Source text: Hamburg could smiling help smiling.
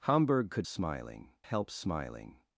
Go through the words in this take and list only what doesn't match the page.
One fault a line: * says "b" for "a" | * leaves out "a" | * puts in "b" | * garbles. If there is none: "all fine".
all fine